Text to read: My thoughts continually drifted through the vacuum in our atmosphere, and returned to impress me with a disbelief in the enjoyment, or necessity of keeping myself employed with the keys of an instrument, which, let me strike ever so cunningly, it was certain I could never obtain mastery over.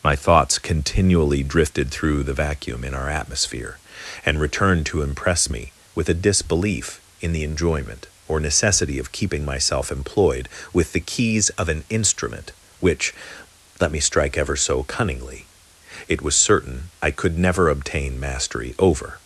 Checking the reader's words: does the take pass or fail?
pass